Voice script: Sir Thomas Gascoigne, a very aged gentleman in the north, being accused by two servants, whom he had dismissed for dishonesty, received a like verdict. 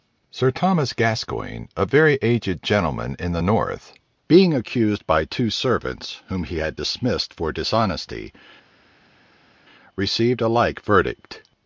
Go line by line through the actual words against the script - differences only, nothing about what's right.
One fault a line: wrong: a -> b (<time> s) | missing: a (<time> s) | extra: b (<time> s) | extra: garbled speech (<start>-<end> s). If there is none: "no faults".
no faults